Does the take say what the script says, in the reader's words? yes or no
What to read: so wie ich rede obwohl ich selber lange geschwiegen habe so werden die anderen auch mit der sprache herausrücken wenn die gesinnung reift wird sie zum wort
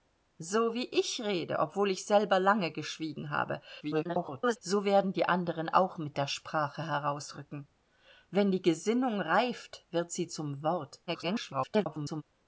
no